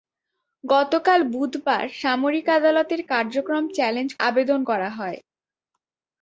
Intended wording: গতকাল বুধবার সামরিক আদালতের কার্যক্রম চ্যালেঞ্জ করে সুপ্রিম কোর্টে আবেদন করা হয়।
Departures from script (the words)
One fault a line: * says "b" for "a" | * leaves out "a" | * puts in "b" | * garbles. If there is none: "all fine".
* leaves out "করে সুপ্রিম কোর্টে"